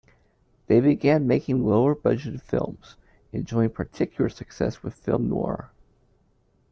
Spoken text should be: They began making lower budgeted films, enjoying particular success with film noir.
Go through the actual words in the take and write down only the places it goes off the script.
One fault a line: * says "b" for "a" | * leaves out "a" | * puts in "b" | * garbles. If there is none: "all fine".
all fine